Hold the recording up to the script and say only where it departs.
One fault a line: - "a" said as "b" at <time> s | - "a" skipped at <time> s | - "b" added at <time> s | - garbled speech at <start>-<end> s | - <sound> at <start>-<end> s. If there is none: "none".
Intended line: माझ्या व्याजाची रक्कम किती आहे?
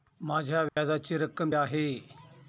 - dropout at 0.7-0.8 s
- "किती" skipped at 1.5 s